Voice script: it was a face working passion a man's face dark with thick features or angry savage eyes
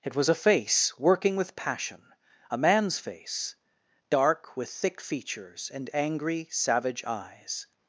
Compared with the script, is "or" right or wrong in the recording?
wrong